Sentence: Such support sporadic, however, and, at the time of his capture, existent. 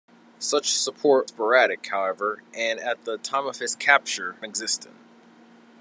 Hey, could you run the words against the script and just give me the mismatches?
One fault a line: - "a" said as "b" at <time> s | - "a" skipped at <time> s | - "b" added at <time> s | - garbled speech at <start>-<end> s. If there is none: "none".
none